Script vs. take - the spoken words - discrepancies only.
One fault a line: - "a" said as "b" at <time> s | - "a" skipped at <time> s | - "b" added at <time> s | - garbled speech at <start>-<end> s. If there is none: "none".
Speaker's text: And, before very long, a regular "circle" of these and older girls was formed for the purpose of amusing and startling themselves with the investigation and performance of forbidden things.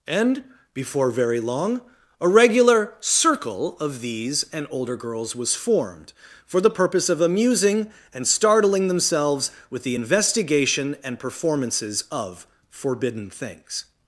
- "performance" said as "performances" at 11.2 s